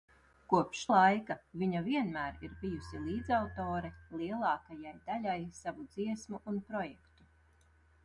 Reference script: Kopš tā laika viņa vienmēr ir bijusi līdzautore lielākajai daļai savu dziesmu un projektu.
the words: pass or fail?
fail